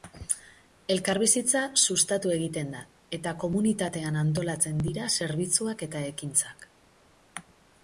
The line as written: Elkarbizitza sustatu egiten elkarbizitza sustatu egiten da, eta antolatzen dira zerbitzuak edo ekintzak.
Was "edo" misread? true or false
true